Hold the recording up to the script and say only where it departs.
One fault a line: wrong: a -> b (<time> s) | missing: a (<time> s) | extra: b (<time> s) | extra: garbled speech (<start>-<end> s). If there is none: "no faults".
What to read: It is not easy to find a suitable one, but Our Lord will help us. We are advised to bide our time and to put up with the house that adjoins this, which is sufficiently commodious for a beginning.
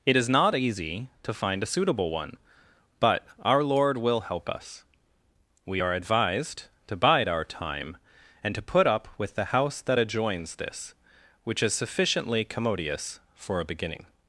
no faults